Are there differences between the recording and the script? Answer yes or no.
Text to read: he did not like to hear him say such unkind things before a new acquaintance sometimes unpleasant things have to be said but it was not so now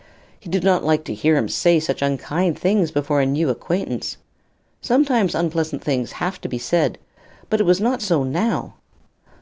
no